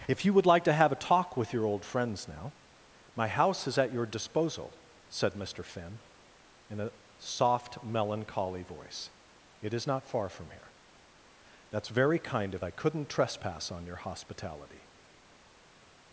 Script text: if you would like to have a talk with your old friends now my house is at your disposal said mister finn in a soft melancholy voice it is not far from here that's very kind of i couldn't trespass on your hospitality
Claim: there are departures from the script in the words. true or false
false